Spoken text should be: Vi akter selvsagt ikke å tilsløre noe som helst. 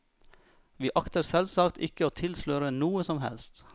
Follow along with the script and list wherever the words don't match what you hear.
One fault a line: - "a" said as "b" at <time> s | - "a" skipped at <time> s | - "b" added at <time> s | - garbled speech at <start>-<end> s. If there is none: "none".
none